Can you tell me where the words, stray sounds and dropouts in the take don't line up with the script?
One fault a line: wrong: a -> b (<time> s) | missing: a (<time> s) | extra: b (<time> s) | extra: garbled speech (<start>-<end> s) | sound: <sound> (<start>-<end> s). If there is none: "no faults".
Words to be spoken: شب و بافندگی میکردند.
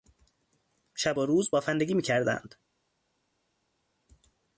extra: روز (1.3 s)